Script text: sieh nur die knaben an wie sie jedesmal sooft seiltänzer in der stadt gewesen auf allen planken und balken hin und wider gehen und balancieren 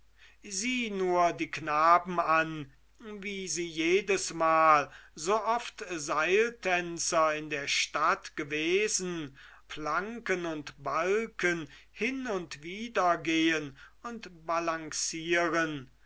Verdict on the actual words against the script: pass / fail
fail